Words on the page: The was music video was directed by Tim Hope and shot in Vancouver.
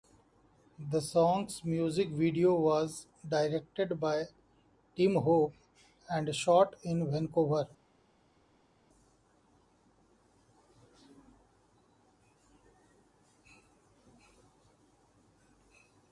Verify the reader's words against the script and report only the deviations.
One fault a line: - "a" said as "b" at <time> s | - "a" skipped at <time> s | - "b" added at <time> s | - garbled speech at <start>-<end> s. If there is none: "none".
- "was" said as "song's" at 1.0 s